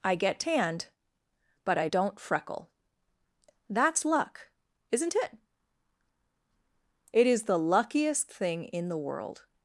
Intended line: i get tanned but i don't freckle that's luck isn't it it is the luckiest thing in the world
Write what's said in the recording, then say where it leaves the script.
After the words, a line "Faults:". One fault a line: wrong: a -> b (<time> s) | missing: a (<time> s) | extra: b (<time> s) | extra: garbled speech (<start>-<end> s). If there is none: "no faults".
i get tanned but i don't freckle that's luck isn't it it is the luckiest thing in the world
Faults:
no faults